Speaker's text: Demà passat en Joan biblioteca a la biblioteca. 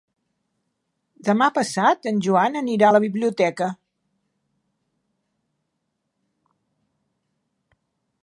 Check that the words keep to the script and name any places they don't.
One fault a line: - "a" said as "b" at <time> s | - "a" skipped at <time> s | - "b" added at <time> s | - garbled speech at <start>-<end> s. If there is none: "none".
- "biblioteca" said as "anirà" at 2.6 s